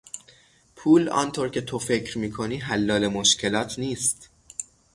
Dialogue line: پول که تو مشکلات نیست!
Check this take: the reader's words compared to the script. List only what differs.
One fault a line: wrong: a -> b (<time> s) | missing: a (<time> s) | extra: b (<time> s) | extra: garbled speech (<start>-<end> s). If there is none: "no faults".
extra: آنطور (1.1 s)
extra: فکر میکنی حلال (1.8 s)